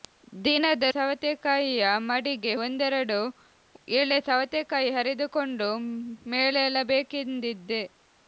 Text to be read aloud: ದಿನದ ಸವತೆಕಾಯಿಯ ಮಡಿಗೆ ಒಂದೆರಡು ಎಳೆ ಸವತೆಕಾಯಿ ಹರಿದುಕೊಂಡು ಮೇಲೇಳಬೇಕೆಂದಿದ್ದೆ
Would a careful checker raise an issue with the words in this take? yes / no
no